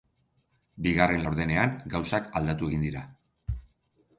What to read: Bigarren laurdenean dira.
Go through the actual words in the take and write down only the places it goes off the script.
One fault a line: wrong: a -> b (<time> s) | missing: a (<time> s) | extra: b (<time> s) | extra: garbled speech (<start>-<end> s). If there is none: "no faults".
extra: gauzak aldatu egin (1.9 s)